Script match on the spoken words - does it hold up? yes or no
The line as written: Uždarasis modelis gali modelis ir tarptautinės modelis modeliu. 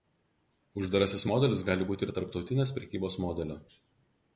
no